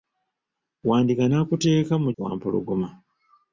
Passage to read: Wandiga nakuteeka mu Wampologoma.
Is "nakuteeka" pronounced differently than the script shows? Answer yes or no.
no